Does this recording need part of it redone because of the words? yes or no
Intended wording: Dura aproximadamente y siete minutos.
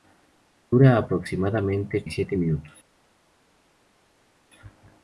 no